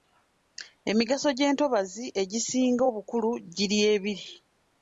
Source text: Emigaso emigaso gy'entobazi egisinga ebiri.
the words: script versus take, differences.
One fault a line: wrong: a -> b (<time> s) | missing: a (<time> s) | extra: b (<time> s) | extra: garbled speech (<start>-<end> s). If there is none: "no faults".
missing: emigaso (1.3 s)
extra: obukulu giri (2.9 s)